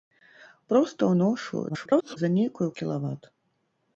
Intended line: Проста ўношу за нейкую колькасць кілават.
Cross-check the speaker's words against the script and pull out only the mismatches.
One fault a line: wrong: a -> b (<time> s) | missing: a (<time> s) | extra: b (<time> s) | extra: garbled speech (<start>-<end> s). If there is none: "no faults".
extra: garbled speech (1.7-2.2 s)
missing: колькасць (2.7 s)